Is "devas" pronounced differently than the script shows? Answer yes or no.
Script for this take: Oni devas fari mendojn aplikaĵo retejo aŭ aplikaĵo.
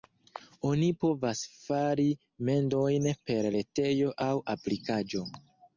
yes